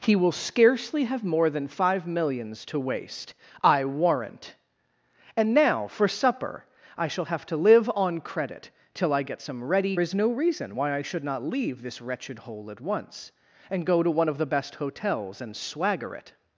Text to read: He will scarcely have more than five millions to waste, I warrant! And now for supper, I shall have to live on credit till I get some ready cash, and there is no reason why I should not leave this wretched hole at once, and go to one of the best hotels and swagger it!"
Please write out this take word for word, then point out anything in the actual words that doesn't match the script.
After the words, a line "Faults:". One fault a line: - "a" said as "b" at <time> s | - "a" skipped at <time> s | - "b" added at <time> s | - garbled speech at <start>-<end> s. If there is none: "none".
He will scarcely have more than five millions to waste, I warrant! And now for supper, I shall have to live on credit till I get some ready is no reason why I should not leave this wretched hole at once, and go to one of the best hotels and swagger it!"
Faults:
- "cash and there" skipped at 10.0 s